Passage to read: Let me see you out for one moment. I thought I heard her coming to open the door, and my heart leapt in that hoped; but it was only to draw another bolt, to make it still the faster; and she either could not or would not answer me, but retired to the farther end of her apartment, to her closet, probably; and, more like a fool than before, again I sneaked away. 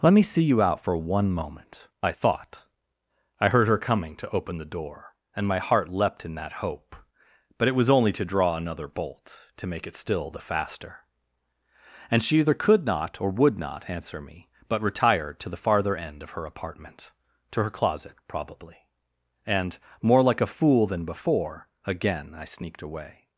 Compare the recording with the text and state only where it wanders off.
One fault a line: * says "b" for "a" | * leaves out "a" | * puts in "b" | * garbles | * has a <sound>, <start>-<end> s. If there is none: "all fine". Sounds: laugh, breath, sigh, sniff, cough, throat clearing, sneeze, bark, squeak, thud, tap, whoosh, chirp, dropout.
* says "hope" for "hoped"